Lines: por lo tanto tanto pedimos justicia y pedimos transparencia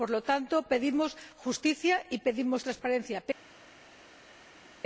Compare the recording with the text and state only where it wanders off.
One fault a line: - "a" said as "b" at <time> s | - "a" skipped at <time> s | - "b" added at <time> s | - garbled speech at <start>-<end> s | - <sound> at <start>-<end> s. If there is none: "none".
- "tanto" skipped at 0.6 s